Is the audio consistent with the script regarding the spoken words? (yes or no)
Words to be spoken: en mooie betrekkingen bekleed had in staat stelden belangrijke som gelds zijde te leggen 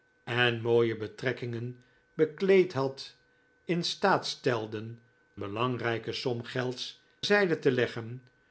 yes